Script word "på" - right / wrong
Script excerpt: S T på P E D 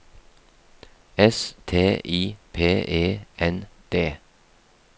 wrong